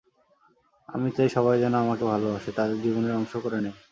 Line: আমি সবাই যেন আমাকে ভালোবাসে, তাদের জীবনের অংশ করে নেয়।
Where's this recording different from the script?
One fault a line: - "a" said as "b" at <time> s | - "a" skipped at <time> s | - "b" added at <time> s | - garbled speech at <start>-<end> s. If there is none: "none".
- "চাই" added at 1.1 s